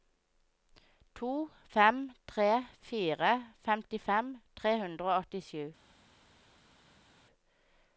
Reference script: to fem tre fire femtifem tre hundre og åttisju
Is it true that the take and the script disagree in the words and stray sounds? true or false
false